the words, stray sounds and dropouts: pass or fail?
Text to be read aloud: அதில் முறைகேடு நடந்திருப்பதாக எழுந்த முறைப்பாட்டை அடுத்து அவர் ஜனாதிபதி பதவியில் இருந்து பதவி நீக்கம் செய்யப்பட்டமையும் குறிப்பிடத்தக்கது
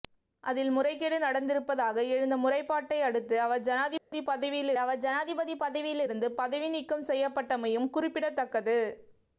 fail